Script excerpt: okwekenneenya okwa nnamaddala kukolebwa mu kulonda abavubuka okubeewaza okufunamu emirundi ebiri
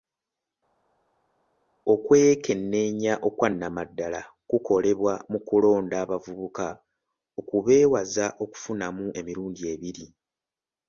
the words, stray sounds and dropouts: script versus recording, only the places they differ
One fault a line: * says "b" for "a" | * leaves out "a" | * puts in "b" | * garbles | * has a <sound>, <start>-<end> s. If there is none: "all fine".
all fine